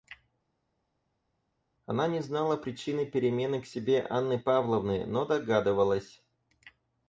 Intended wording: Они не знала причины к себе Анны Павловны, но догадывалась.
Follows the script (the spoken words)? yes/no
no